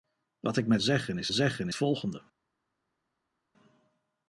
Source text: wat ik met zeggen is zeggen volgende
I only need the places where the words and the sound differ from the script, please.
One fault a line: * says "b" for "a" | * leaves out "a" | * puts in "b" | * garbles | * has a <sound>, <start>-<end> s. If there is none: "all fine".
all fine